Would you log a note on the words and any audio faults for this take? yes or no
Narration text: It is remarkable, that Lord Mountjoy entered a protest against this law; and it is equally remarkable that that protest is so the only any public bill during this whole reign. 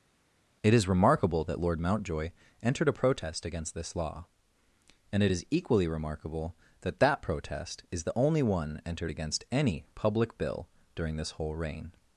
yes